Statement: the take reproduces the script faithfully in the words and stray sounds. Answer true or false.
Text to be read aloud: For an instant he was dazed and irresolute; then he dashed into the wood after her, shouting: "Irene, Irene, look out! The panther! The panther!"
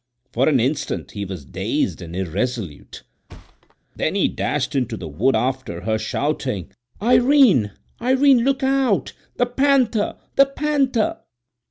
false